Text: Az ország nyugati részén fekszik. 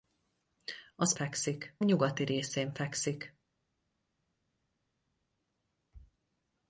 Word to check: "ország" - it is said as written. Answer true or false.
false